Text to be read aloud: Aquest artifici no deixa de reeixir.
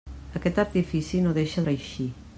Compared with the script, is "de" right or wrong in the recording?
wrong